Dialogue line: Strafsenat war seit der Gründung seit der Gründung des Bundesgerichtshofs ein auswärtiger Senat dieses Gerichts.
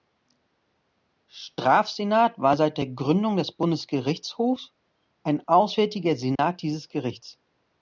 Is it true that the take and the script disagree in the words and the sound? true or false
true